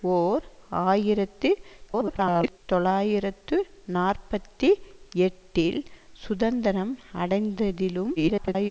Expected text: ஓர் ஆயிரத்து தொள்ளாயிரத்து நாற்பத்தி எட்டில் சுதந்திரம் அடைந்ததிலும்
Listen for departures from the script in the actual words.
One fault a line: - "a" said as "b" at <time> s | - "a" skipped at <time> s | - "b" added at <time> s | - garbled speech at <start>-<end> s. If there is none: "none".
- garbled speech at 1.9-2.6 s
- garbled speech at 8.2-8.7 s